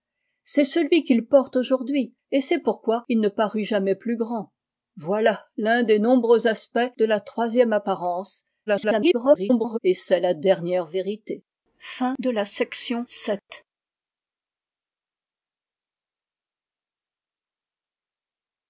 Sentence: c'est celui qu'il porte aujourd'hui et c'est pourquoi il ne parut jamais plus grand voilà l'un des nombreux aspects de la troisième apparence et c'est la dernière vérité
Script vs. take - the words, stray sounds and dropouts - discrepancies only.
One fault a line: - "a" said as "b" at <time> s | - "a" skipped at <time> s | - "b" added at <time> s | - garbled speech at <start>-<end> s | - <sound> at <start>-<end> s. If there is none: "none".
- garbled speech at 8.7-9.8 s